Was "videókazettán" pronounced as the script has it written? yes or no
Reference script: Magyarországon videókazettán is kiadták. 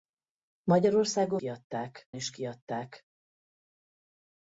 no